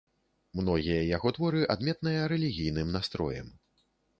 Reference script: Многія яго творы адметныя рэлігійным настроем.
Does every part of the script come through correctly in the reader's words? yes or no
yes